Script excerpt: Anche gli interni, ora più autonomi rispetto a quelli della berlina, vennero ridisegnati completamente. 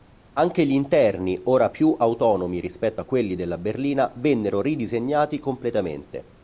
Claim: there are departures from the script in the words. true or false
false